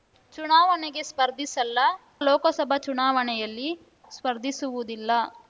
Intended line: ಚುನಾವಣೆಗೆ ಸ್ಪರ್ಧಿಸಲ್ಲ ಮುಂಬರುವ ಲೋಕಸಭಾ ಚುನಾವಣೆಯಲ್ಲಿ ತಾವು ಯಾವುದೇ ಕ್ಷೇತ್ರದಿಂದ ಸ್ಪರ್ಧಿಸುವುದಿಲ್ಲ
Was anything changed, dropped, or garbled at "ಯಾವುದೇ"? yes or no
yes